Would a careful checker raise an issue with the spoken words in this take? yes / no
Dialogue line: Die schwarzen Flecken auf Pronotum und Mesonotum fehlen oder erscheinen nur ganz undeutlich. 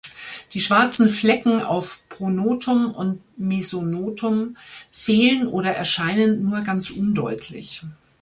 no